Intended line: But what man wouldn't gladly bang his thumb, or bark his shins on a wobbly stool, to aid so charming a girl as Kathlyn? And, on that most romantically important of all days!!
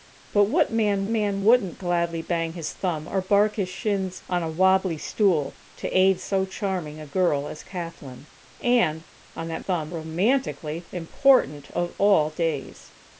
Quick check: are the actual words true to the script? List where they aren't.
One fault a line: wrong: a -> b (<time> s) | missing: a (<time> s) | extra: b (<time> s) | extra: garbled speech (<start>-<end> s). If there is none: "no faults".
extra: man (1.1 s)
wrong: most -> thumb (9.6 s)